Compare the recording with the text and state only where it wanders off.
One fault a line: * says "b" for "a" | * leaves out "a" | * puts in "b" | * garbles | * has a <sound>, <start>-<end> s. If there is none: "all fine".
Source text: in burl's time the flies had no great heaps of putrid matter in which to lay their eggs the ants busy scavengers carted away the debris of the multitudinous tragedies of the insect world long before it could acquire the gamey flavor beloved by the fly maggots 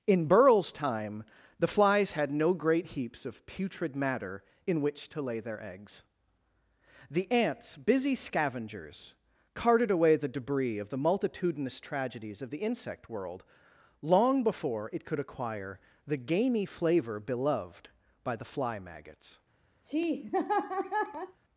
* has a laugh, 19.8-21.4 s